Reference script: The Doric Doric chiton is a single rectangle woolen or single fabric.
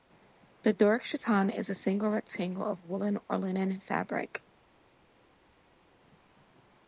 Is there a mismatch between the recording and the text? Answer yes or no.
yes